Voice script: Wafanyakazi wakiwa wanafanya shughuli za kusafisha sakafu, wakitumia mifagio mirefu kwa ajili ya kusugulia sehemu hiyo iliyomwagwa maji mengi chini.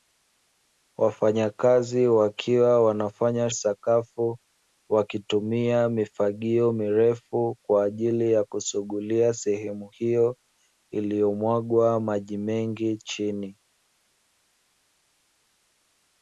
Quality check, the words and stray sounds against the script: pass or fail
fail